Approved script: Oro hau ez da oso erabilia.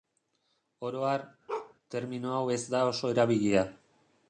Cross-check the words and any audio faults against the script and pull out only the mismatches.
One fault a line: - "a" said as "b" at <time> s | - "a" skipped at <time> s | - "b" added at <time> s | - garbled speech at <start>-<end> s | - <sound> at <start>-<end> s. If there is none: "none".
- "har termino" added at 1.1 s
- bark at 1.5-1.7 s